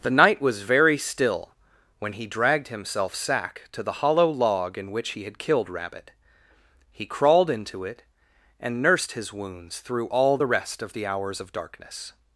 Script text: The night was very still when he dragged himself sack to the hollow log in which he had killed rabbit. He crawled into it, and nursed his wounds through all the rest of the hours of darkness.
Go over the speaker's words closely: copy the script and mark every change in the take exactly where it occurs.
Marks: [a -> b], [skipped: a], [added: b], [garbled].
The night was very still when he dragged himself sack to the hollow log in which he had killed rabbit. He crawled into it, and nursed his wounds through all the rest of the hours of darkness.